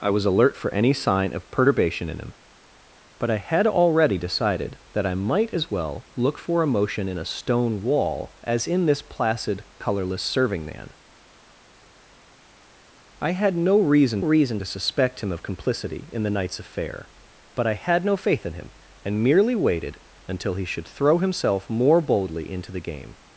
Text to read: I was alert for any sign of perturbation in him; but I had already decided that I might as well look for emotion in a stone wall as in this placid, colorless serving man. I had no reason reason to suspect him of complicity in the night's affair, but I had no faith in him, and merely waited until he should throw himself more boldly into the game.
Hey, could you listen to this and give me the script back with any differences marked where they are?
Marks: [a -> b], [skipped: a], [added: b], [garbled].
I was alert for any sign of perturbation in him; but I had already decided that I might as well look for emotion in a stone wall as in this placid, colorless serving man. I had no reason reason to suspect him of complicity in the night's affair, but I had no faith in him, and merely waited until he should throw himself more boldly into the game.